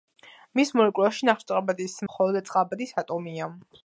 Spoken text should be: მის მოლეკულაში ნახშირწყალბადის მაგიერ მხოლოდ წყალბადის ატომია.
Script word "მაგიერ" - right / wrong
wrong